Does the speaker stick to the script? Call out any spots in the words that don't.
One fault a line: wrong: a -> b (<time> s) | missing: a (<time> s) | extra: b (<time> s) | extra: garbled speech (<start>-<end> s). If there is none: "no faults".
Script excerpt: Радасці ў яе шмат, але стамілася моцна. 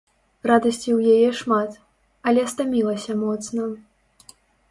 no faults